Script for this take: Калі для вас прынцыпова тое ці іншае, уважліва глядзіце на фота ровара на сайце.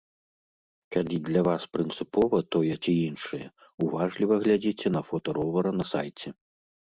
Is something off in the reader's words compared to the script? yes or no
no